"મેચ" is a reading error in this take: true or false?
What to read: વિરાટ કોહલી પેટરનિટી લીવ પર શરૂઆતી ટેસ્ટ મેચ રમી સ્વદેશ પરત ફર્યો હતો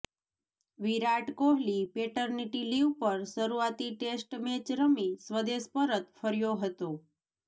false